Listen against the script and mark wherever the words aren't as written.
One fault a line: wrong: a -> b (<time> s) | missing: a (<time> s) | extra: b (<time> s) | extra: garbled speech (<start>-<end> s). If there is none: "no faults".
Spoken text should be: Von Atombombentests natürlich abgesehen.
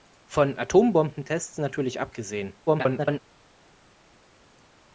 extra: garbled speech (2.7-3.2 s)